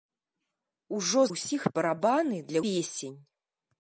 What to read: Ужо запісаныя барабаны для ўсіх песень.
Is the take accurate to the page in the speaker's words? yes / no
no